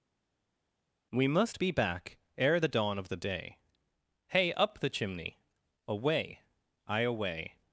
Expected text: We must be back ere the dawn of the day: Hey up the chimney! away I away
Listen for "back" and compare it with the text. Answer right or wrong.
right